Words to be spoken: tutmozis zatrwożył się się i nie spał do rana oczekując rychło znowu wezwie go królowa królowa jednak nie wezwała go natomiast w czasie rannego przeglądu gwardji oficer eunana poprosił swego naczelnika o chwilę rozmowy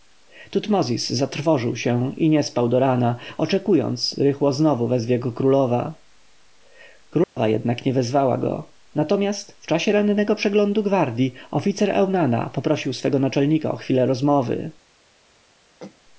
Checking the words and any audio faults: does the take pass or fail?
fail